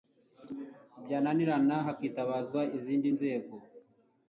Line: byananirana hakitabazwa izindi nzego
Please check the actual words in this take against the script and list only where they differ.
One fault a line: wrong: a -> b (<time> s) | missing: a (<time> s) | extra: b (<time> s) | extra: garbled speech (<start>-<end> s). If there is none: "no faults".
no faults